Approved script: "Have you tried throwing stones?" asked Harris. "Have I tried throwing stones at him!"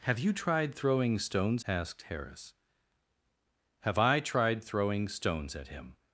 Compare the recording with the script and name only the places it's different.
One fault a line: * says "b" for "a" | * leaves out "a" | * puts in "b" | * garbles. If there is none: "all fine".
all fine